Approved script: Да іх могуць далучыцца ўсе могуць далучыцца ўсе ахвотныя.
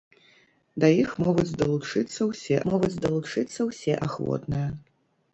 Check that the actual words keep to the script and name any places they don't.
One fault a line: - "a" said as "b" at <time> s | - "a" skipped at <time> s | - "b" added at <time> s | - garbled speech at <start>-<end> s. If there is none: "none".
none